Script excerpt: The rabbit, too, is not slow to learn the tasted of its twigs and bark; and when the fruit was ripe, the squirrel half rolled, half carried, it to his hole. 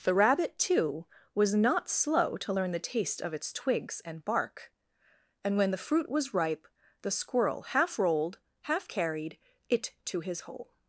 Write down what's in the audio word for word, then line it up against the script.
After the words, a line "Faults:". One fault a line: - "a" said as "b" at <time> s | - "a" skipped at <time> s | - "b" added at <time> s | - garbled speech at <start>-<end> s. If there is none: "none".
The rabbit, too, was not slow to learn the taste of its twigs and bark; and when the fruit was ripe, the squirrel half rolled, half carried, it to his hole.
Faults:
- "is" said as "was" at 1.3 s
- "tasted" said as "taste" at 2.8 s